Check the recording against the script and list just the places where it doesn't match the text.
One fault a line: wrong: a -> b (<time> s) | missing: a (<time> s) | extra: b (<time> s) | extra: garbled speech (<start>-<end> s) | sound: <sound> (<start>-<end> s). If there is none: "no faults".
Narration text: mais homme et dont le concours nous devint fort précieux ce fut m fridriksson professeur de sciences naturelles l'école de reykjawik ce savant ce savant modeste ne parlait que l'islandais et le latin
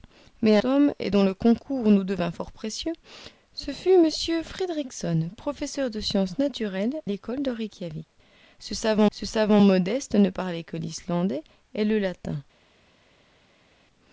no faults